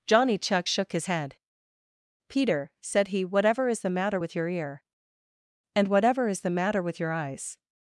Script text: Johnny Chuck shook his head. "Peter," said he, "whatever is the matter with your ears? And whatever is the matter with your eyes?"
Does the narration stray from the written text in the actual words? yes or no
yes